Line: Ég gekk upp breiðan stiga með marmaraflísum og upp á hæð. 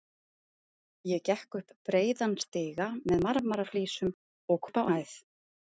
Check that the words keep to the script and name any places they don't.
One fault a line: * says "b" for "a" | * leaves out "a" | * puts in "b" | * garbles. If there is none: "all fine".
all fine